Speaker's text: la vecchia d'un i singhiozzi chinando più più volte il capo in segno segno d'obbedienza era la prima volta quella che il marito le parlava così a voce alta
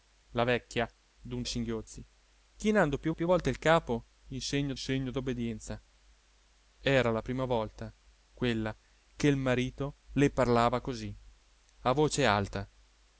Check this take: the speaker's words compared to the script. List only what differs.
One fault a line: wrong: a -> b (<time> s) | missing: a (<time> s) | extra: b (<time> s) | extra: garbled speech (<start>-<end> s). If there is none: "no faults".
no faults